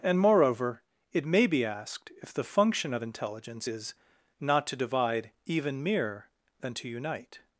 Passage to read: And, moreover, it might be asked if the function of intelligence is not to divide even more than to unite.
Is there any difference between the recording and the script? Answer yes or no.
yes